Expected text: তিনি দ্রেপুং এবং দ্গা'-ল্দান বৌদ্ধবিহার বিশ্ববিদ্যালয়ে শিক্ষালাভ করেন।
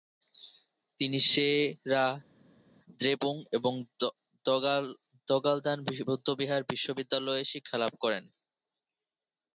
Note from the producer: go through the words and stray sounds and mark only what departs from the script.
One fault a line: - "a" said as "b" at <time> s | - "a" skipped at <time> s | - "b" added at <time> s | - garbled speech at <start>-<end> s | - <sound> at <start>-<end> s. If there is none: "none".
- "সে-রা" added at 1.3 s